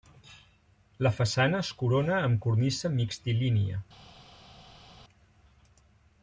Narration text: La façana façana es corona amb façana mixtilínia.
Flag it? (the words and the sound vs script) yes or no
yes